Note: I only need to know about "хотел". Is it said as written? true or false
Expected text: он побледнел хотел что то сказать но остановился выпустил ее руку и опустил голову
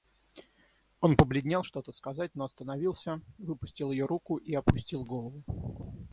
false